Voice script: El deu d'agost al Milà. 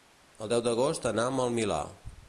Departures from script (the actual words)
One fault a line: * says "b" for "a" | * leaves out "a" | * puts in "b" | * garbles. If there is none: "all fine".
* puts in "anam"